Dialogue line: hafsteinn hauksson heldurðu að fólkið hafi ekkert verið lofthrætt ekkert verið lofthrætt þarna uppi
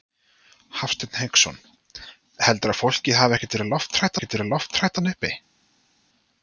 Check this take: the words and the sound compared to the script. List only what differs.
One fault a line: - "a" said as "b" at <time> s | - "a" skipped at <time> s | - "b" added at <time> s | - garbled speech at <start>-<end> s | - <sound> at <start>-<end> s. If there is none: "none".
none